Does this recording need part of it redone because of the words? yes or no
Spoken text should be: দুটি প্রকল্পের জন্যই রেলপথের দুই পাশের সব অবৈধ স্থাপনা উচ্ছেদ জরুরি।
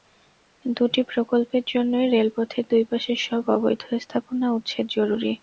no